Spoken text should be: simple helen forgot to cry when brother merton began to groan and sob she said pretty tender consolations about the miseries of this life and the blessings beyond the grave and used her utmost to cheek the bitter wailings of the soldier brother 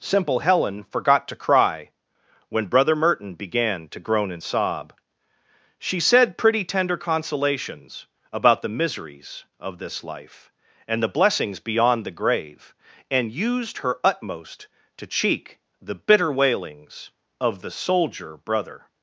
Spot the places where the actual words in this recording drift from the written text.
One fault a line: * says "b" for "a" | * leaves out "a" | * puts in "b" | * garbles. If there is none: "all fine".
all fine